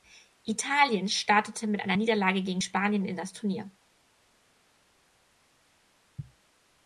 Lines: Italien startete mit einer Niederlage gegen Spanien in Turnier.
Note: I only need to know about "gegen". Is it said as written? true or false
true